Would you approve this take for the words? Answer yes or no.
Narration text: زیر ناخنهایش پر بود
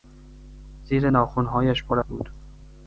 yes